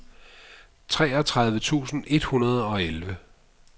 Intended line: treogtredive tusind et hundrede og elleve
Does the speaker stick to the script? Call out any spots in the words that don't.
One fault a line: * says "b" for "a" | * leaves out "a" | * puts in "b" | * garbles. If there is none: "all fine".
all fine